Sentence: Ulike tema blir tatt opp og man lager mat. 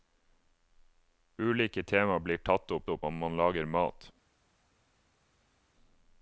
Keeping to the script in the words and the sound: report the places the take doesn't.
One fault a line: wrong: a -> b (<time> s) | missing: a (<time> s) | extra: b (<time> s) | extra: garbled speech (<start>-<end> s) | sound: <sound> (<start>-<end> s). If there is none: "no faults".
extra: opp (2.9 s)